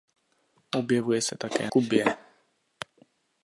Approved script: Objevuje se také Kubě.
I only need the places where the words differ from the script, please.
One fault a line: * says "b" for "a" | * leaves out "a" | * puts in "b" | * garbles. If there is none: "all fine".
all fine